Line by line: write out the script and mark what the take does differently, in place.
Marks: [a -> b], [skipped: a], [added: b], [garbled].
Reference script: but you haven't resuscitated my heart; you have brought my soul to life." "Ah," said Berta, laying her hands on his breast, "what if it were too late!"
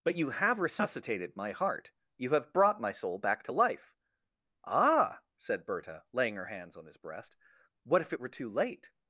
but you [haven't -> have] resuscitated my heart; you have brought my soul [added: back] to life." "Ah," said Berta, laying her hands on his breast, "what if it were too late!"